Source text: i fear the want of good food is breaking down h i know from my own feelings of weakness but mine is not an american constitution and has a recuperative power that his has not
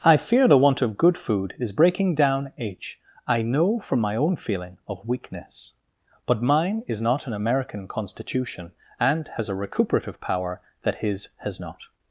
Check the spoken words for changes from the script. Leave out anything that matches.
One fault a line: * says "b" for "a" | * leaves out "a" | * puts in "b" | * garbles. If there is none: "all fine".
* says "feeling" for "feelings"